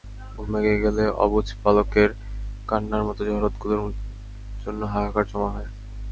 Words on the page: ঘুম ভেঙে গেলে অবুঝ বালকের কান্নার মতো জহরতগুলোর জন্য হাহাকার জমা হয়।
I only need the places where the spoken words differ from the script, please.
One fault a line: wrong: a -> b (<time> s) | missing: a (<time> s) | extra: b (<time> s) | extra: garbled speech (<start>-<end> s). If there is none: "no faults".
no faults